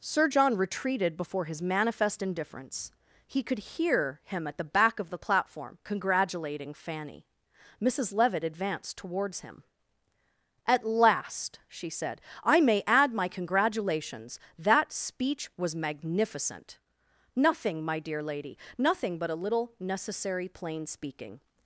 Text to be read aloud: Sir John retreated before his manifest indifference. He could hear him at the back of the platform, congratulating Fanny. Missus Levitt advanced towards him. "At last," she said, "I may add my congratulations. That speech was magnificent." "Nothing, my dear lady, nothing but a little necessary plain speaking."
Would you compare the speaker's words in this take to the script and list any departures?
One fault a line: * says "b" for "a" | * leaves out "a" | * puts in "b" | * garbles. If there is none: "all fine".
all fine